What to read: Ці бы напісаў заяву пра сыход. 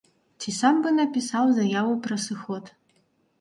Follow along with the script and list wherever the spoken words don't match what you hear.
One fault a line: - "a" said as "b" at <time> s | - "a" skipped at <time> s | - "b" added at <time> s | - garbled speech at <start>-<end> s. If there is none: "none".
- "сам" added at 0.6 s